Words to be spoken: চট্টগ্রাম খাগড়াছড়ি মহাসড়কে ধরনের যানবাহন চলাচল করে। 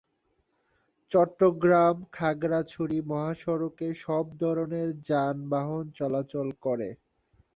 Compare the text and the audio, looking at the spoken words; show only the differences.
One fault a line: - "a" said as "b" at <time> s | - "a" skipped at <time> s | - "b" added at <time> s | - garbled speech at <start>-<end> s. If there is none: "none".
- "সব" added at 4.0 s